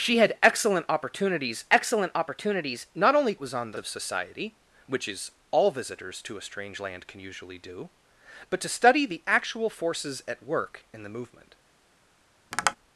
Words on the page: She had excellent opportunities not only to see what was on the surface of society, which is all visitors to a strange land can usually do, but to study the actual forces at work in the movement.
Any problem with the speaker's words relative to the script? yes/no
yes